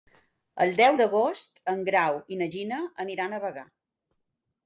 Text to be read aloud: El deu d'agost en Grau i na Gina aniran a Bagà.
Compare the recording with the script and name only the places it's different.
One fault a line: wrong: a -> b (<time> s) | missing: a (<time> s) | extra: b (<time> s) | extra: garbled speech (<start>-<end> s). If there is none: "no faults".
no faults